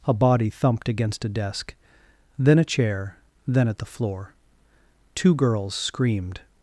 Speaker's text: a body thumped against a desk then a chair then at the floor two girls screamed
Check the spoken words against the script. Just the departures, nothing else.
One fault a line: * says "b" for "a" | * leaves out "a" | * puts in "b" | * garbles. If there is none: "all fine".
all fine